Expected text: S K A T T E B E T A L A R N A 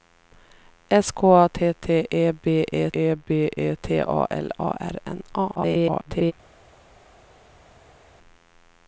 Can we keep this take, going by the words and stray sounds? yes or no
no